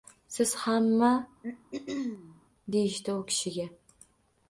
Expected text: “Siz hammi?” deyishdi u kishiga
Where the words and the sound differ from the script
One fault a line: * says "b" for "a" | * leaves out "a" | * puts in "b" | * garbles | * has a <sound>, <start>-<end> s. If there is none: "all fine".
* has a throat clearing, 1.4-2.4 s